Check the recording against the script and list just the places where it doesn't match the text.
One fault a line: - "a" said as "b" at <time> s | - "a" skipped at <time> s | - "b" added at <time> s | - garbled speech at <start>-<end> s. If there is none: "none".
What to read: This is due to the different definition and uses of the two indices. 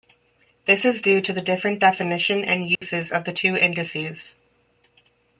none